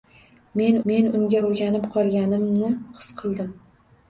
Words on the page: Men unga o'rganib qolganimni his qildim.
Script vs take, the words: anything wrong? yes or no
yes